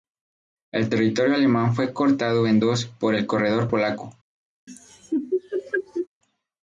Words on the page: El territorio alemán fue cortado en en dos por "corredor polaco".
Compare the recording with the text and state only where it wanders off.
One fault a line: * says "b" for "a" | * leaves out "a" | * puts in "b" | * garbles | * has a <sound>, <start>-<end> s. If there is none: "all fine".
* leaves out "en"
* puts in "el"
* has a laugh, 4.7-6.1 s